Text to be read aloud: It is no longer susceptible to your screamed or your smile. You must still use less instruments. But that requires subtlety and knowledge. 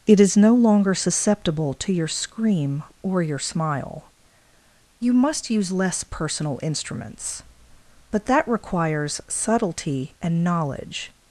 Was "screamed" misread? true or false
true